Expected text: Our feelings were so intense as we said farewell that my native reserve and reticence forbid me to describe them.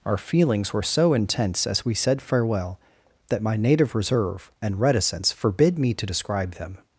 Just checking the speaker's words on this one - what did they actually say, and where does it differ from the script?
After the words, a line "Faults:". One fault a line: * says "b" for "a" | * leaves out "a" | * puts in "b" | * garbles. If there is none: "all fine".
Our feelings were so intense as we said farewell that my native reserve and reticence forbid me to describe them.
Faults:
all fine